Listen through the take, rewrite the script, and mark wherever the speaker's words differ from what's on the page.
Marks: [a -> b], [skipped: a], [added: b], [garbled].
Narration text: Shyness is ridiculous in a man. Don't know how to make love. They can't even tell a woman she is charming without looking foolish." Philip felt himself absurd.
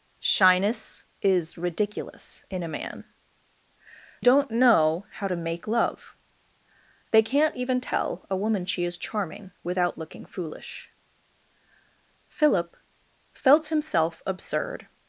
Shyness is ridiculous in a man. Don't know how to make love. They can't even tell a woman she is charming without looking foolish." Philip felt himself absurd.